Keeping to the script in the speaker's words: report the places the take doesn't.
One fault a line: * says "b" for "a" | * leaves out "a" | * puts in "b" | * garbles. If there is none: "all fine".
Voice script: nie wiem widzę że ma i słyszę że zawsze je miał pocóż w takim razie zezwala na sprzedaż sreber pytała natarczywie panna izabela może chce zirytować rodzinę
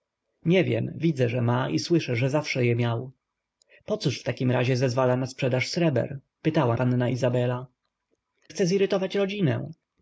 * leaves out "natarczywie"
* leaves out "może"